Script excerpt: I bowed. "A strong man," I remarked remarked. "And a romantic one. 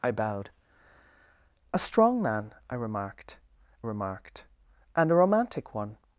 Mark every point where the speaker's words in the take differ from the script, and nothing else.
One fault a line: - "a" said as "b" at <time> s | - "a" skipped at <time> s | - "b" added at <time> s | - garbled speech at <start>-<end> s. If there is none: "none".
none